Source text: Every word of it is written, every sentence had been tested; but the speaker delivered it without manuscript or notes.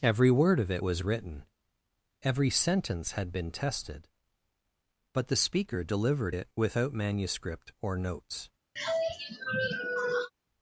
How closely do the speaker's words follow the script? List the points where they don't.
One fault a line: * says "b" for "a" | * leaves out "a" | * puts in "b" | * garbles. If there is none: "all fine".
* says "was" for "is"